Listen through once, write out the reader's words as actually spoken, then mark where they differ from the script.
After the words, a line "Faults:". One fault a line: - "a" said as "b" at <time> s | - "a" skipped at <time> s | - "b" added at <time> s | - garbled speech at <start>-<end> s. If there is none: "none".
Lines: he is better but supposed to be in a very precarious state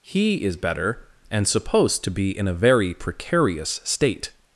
he is better and supposed to be in a very precarious state
Faults:
- "but" said as "and" at 1.3 s